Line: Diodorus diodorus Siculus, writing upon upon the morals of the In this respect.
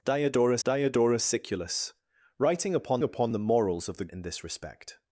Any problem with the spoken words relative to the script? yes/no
no